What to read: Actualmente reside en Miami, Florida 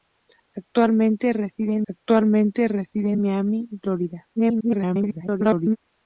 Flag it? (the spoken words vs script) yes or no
yes